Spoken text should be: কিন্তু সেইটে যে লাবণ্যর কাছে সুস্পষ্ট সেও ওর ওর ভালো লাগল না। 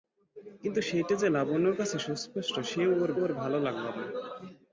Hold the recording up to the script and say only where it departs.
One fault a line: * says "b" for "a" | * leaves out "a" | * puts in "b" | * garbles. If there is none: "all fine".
all fine